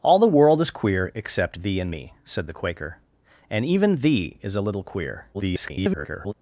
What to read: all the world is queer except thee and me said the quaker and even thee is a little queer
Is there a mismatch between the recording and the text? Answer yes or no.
yes